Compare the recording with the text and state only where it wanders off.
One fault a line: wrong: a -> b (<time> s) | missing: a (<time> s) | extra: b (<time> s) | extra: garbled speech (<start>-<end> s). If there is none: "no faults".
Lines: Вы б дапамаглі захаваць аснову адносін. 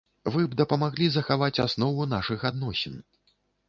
extra: нашых (2.2 s)